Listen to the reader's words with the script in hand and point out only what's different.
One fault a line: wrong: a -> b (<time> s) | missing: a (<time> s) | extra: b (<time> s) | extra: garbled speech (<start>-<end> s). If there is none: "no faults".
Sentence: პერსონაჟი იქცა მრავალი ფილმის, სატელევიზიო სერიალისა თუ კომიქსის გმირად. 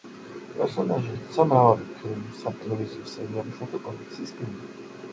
no faults